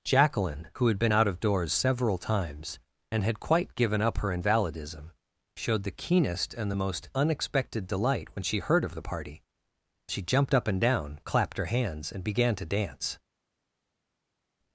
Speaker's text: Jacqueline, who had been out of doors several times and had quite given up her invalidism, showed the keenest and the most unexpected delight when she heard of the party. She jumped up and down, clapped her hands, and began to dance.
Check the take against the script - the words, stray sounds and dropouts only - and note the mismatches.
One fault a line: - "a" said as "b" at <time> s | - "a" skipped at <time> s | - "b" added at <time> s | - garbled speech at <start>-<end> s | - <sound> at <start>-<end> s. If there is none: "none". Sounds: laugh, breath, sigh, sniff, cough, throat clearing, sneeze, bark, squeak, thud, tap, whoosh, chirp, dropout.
none